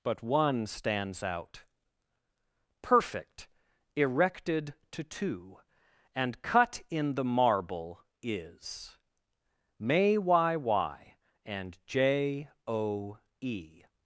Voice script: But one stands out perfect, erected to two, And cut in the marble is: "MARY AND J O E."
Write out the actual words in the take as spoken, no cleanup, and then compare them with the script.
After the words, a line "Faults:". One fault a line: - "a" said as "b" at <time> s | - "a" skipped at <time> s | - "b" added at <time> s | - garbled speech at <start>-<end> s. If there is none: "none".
But one stands out perfect, erected to two, And cut in the marble is: "May y y AND J O E."
Faults:
- "MARY" said as "May y y" at 9.8 s